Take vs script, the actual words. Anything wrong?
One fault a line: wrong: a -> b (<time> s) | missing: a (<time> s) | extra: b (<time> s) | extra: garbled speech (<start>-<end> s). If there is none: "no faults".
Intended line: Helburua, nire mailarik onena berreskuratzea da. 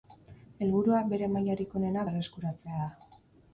wrong: nire -> bere (1.1 s)